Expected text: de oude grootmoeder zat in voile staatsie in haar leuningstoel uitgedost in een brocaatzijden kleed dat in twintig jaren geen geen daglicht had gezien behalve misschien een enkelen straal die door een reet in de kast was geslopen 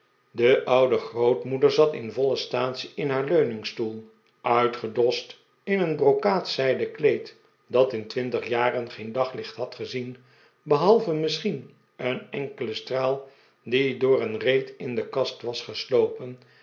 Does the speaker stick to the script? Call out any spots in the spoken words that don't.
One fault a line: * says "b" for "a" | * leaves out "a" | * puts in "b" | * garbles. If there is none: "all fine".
* leaves out "geen"